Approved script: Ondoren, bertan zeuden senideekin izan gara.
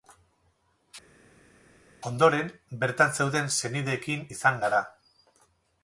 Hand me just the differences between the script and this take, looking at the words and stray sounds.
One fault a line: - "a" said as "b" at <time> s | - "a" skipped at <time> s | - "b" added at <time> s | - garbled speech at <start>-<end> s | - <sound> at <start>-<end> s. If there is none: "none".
none